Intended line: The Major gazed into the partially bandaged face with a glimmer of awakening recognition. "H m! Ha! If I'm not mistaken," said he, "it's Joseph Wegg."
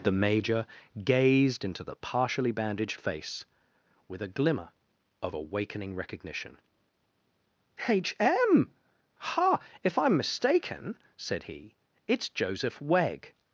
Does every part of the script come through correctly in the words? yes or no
no